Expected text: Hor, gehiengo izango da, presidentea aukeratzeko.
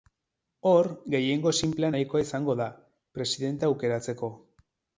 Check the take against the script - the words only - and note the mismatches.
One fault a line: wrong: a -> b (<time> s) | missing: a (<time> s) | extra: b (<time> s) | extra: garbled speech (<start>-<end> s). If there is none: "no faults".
extra: sinplea nahikoa (1.6 s)